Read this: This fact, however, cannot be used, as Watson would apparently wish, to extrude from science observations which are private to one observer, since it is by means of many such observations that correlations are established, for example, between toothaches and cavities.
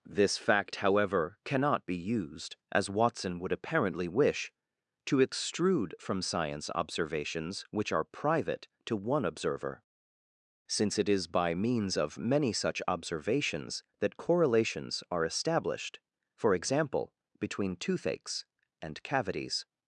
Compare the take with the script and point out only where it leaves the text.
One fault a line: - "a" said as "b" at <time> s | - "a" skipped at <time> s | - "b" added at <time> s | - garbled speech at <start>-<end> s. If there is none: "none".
none